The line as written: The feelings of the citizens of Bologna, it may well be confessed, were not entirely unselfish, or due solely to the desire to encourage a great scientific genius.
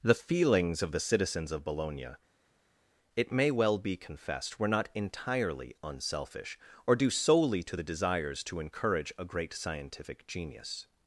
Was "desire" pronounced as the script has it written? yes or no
no